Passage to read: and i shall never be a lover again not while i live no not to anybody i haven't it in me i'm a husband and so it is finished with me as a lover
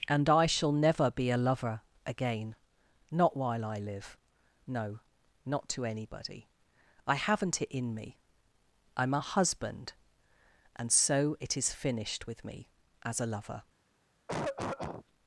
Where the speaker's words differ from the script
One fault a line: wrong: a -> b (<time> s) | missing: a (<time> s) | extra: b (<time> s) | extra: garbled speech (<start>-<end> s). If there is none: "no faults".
no faults